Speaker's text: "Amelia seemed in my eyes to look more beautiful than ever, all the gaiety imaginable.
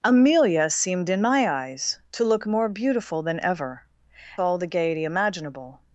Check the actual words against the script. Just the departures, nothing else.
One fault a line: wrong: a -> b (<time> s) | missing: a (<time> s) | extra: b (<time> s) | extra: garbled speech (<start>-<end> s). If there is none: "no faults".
no faults